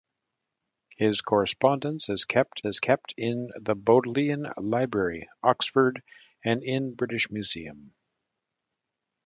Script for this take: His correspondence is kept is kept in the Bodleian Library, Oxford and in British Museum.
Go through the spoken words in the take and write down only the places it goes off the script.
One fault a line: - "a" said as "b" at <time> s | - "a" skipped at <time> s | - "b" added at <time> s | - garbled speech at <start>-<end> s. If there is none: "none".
none